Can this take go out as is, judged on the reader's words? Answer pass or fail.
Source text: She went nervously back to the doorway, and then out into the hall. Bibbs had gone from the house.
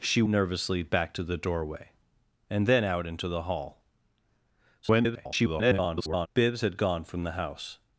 fail